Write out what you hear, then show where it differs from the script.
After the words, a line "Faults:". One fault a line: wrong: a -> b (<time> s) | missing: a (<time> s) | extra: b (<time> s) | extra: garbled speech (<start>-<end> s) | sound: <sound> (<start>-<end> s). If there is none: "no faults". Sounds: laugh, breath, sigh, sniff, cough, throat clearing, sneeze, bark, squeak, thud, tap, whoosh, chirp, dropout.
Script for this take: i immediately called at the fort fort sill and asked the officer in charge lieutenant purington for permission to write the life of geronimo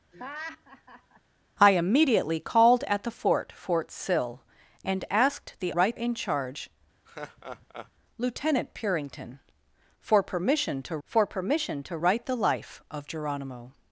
i immediately called at the fort fort sill and asked the write in charge lieutenant purington for permission to for permission to write the life of geronimo
Faults:
sound: laugh (0.1-1.2 s)
wrong: officer -> write (5.7 s)
sound: laugh (7.1-7.9 s)
extra: for permission to (11.0 s)